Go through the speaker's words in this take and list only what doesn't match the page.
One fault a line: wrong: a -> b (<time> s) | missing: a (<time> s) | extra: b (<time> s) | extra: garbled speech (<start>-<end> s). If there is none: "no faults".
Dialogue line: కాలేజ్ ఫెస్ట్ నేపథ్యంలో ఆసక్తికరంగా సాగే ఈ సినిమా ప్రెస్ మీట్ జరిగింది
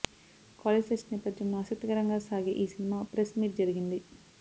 no faults